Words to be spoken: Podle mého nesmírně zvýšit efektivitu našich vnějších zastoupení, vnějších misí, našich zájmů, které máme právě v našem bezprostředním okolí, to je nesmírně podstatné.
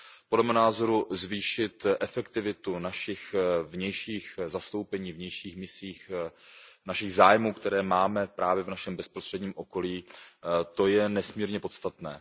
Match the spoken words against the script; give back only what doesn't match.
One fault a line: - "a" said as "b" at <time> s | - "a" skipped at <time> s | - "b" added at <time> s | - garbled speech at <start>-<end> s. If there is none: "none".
- "nesmírně" said as "názoru" at 0.5 s